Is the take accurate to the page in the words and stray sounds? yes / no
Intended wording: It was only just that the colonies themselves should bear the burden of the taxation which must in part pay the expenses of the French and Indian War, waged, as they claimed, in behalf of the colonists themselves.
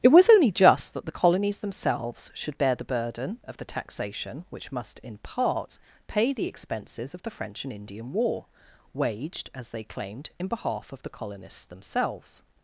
yes